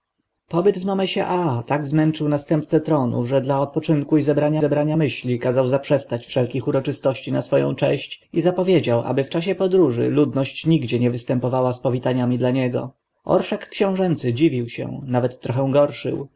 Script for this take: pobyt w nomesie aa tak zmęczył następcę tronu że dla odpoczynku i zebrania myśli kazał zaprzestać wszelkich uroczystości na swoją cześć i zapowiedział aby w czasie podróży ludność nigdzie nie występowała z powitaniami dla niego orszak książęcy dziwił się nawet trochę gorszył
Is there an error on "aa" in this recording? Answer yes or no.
no